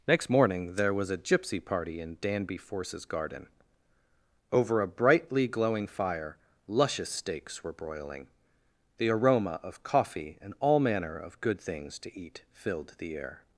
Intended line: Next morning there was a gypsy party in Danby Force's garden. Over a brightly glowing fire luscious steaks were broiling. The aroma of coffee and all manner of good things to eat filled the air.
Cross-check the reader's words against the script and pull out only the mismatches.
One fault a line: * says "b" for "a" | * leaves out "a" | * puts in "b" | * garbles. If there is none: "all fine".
all fine